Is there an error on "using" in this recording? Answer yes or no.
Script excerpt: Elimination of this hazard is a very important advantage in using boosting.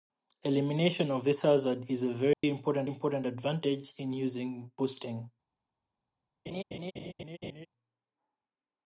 no